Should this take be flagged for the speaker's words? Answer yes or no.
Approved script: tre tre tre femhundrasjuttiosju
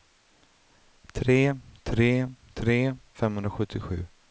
no